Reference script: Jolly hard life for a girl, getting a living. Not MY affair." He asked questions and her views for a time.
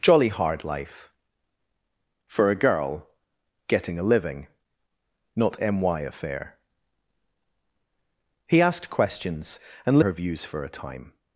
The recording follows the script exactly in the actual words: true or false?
true